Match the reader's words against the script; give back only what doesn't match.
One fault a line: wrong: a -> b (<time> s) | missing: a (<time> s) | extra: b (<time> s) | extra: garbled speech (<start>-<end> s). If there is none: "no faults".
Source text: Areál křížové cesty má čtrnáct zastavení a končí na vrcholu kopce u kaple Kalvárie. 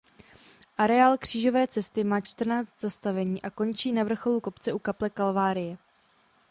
no faults